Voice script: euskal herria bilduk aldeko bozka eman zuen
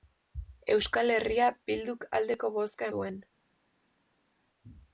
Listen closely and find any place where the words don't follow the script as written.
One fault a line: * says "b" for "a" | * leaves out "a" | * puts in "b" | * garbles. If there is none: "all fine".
* leaves out "eman"